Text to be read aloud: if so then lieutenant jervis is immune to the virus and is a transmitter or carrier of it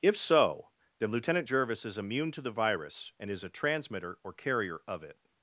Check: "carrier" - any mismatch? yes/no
no